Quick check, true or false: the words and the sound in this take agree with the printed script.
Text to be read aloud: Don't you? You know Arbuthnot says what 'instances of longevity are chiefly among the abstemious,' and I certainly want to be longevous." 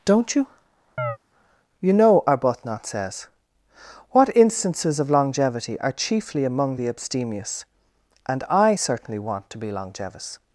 false